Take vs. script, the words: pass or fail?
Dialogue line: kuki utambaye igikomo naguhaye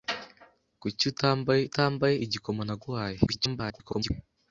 fail